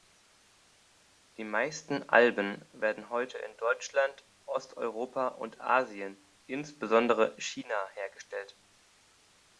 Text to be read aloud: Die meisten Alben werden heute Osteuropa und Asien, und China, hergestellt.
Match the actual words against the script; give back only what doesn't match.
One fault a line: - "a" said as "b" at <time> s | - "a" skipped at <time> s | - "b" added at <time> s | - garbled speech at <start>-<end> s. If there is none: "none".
- "in Deutschland" added at 3.4 s
- "und" said as "insbesondere" at 6.5 s